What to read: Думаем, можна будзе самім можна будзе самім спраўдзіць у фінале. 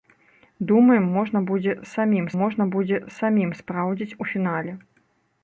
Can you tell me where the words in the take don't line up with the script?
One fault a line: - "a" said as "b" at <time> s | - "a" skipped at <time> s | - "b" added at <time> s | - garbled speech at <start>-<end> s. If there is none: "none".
none